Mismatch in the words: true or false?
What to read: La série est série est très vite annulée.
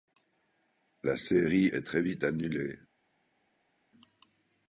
true